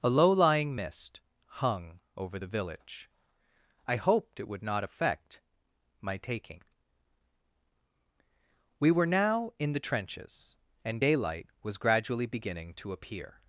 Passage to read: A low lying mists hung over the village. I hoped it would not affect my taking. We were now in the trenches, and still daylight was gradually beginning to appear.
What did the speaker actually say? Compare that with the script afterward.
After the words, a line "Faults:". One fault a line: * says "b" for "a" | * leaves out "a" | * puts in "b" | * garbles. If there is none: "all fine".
A low lying mist hung over the village. I hoped it would not affect my taking. We were now in the trenches, and daylight was gradually beginning to appear.
Faults:
* says "mist" for "mists"
* leaves out "still"